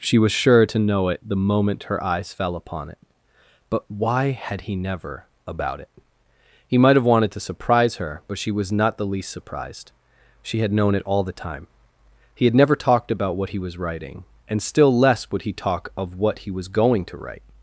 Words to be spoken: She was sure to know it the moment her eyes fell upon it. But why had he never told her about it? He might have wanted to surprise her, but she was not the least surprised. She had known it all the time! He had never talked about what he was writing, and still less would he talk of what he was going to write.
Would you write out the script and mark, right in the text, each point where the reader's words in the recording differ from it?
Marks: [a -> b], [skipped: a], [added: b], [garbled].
She was sure to know it the moment her eyes fell upon it. But why had he never [skipped: told her] about it? He might have wanted to surprise her, but she was not the least surprised. She had known it all the time! He had never talked about what he was writing, and still less would he talk of what he was going to write.